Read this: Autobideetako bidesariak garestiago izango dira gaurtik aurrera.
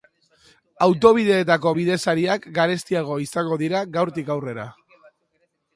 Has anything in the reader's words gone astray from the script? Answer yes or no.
no